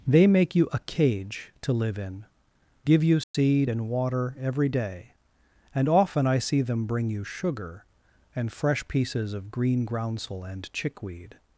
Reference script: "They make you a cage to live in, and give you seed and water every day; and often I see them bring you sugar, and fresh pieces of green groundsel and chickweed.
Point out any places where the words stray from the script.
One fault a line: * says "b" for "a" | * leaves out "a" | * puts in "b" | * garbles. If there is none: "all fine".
* leaves out "and"